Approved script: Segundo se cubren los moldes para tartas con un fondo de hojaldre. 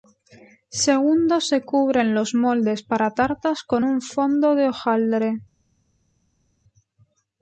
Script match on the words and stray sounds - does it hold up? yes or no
yes